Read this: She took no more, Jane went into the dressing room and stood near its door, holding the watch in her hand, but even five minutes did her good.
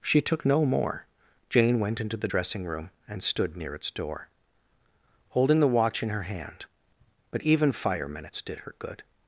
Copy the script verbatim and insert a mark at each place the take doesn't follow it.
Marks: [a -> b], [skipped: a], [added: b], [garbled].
She took no more, Jane went into the dressing room and stood near its door, holding the watch in her hand, but even [five -> fire] minutes did her good.